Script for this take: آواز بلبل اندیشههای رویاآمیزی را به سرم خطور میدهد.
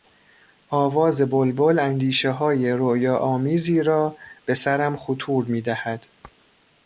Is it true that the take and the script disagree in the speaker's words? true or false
false